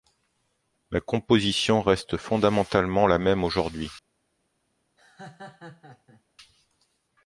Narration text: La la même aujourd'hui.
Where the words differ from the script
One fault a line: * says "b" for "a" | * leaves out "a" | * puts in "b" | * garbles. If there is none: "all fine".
* puts in "composition reste fondamentalement"